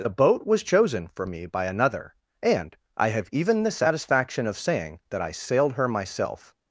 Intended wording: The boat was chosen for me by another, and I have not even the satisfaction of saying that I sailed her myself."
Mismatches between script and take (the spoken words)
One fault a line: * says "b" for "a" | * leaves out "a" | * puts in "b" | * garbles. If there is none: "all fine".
* leaves out "not"